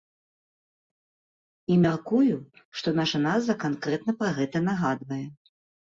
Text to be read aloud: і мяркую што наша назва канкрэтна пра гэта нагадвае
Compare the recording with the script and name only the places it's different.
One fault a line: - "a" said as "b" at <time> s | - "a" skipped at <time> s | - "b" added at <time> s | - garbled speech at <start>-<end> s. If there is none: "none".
none